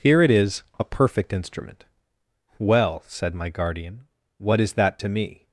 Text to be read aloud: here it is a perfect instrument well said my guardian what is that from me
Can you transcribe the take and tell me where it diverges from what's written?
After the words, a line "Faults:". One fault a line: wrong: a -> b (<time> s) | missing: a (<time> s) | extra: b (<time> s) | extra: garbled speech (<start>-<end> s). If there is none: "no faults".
here it is a perfect instrument well said my guardian what is that to me
Faults:
wrong: from -> to (5.0 s)